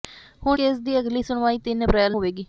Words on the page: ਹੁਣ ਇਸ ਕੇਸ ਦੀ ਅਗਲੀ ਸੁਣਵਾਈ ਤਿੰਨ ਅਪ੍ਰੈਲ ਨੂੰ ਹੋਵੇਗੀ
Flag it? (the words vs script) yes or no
yes